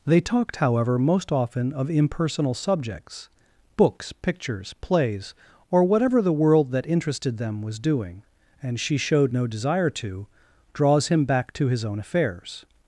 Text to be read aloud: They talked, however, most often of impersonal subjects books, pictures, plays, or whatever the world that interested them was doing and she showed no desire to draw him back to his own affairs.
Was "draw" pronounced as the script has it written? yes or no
no